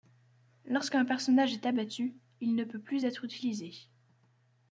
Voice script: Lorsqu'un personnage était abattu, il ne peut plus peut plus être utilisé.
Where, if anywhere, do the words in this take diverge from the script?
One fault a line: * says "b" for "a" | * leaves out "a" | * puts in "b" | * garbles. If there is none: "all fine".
* says "est" for "était"
* leaves out "peut plus"